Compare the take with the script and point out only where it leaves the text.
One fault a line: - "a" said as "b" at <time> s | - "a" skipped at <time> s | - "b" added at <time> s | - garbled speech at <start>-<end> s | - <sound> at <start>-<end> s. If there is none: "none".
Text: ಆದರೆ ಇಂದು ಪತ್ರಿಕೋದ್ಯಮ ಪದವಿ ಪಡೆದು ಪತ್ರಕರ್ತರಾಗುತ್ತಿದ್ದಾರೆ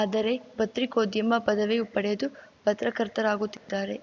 - "ಇಂದು" skipped at 0.3 s
- dropout at 3.6-3.7 s